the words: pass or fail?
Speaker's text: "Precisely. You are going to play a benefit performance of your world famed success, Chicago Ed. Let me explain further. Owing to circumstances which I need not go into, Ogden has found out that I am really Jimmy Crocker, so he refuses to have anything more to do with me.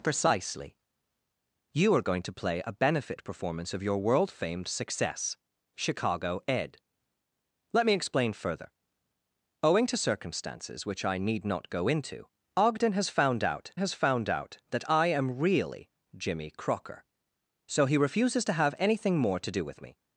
fail